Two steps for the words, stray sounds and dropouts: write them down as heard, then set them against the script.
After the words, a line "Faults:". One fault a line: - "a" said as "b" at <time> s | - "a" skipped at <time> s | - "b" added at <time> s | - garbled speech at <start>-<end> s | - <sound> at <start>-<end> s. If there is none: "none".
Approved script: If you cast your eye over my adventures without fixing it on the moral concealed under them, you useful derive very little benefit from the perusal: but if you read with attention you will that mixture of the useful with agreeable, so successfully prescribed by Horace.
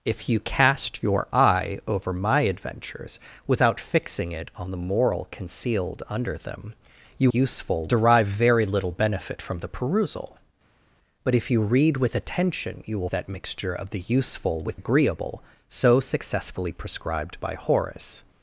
If you cast your eye over my adventures without fixing it on the moral concealed under them, you useful derive very little benefit from the perusal: but if you read with attention you will that mixture of the useful with agreeable, so successfully prescribed by Horace.
Faults:
none